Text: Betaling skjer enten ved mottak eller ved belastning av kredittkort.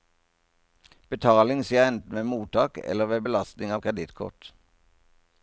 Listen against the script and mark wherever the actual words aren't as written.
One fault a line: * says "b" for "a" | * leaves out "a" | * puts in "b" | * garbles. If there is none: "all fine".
all fine